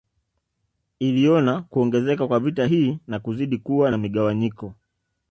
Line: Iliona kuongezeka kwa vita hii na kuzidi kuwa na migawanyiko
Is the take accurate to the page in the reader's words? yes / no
yes